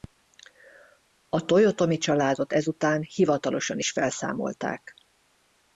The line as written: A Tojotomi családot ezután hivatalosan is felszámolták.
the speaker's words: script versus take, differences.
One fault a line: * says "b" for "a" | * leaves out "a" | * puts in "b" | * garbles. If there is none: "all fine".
all fine